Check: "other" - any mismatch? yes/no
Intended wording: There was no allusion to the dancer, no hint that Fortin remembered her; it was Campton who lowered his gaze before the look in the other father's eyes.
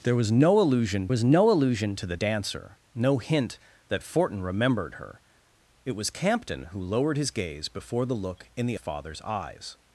yes